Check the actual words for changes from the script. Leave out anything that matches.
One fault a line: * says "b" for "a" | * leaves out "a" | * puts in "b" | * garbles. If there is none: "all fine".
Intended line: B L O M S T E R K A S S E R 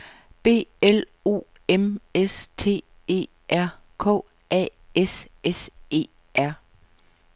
all fine